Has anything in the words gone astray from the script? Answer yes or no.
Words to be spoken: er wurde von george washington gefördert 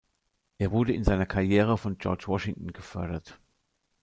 yes